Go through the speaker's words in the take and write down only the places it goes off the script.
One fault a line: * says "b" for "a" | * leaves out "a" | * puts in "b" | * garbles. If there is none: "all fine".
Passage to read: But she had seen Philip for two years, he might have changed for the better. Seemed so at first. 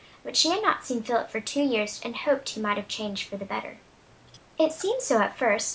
* puts in "not"
* puts in "and hoped"
* puts in "It"